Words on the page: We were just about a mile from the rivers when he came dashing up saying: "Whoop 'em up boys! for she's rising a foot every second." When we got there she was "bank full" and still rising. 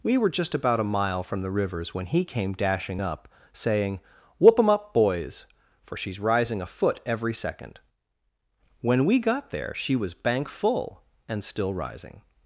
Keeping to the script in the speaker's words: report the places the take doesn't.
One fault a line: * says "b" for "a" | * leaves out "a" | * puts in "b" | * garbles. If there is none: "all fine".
all fine